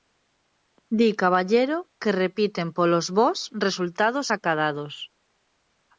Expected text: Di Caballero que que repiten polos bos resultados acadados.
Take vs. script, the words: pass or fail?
fail